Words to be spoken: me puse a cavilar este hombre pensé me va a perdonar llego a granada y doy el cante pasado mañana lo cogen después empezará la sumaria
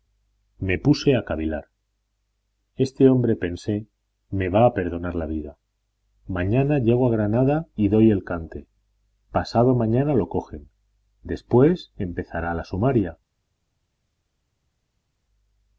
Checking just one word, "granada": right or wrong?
right